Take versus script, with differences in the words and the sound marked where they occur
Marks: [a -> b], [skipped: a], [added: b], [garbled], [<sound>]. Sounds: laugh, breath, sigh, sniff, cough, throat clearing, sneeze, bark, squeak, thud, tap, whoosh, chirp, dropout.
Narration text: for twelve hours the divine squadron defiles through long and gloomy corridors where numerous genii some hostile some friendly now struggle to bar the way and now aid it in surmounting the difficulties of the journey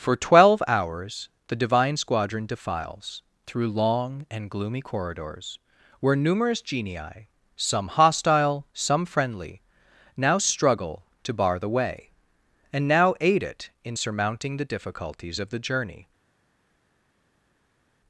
for twelve hours the divine squadron defiles through long and gloomy corridors where numerous genii some hostile some friendly now struggle to bar the way and now aid it in surmounting the difficulties of the journey